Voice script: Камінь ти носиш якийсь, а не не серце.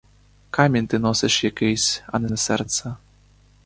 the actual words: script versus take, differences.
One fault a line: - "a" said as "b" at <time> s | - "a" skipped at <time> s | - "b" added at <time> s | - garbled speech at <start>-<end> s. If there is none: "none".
none